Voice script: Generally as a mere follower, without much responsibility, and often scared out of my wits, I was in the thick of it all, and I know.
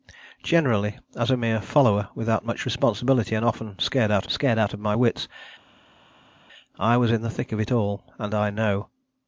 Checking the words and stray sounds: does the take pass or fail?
fail